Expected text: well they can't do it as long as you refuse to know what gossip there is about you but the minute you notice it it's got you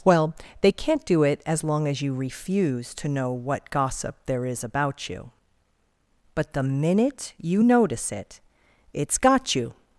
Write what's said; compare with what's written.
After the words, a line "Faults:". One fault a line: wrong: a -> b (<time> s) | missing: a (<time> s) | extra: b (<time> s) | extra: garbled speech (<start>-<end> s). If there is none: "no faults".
well they can't do it as long as you refuse to know what gossip there is about you but the minute you notice it it's got you
Faults:
no faults